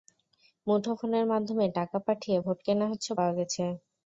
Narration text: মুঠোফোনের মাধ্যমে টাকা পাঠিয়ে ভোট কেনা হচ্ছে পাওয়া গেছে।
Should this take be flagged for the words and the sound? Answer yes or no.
no